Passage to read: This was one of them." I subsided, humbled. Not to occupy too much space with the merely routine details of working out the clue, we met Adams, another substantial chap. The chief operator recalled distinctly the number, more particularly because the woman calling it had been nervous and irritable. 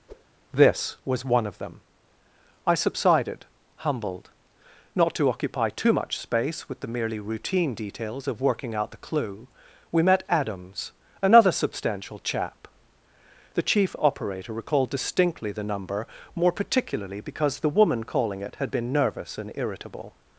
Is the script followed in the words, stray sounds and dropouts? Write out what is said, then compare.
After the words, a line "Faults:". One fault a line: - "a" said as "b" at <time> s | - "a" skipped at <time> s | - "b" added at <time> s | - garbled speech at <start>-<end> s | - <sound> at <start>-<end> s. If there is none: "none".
This was one of them." I subsided, humbled. Not to occupy too much space with the merely routine details of working out the clue, we met Adams, another substantial chap. The chief operator recalled distinctly the number, more particularly because the woman calling it had been nervous and irritable.
Faults:
- whoosh at 0.1-0.3 s